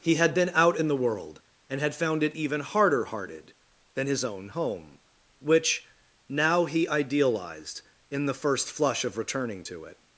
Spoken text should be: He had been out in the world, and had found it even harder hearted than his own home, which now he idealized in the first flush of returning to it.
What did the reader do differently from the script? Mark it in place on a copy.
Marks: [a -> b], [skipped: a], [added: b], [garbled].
He had been out in the world, and had found it even harder hearted than his own home, which now he idealized in the first flush of returning to it.